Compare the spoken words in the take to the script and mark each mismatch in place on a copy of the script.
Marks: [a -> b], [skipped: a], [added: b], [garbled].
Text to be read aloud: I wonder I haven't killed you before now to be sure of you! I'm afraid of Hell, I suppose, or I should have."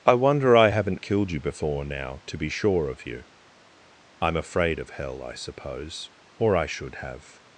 I wonder I haven't killed you before now to be sure of you! I'm afraid of Hell, I suppose, or I should have."